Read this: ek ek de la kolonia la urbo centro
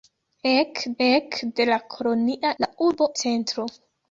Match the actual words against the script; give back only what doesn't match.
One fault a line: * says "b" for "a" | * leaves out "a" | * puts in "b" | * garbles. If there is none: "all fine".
all fine